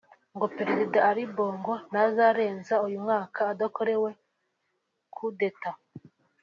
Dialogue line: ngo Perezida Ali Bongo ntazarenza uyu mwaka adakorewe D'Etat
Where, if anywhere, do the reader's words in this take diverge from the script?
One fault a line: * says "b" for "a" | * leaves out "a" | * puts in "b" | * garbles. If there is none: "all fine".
* puts in "Coup"